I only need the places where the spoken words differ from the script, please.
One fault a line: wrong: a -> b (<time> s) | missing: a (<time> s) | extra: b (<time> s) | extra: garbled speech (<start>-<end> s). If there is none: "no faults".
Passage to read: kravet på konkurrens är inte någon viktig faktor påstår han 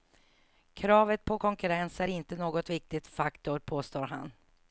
no faults